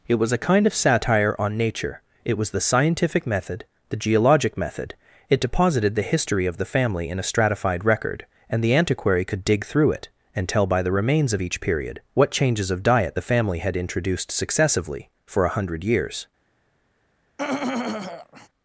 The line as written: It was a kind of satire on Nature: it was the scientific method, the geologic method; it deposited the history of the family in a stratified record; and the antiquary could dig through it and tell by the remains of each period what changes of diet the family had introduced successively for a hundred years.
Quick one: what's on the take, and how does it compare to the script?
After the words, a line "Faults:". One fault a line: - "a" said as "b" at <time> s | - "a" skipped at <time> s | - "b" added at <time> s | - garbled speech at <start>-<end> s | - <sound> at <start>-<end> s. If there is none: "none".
It was a kind of satire on Nature: it was the scientific method, the geologic method; it deposited the history of the family in a stratified record; and the antiquary could dig through it and tell by the remains of each period what changes of diet the family had introduced successively for a hundred years.
Faults:
- throat clearing at 17.4-18.5 s